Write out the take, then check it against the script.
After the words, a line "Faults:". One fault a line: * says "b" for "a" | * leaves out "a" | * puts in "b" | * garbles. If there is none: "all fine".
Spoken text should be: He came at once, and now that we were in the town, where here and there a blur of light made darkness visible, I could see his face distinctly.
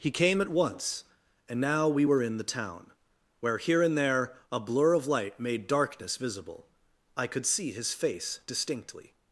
He came at once, and now we were in the town, where here and there a blur of light made darkness visible, I could see his face distinctly.
Faults:
* leaves out "that"